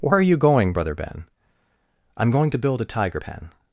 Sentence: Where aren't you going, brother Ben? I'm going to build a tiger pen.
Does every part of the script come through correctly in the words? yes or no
no